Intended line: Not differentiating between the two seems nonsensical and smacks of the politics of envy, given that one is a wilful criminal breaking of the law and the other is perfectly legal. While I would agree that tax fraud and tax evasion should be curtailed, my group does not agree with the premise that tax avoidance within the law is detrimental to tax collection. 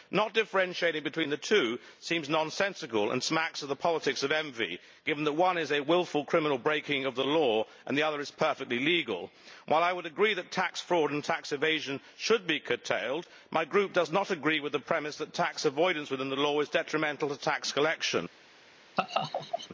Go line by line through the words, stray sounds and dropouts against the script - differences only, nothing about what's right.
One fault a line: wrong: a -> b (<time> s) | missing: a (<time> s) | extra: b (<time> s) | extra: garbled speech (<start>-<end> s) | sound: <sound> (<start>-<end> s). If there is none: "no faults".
sound: laugh (19.0-19.7 s)